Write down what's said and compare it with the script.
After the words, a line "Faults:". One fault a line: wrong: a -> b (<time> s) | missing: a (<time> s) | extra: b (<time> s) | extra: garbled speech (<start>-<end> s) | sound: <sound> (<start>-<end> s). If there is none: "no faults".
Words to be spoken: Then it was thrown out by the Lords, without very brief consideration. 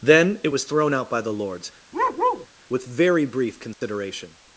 Then it was thrown out by the Lords, with very brief consideration.
Faults:
sound: bark (1.9-2.5 s)
wrong: without -> with (2.7 s)
sound: dropout (3.7-3.8 s)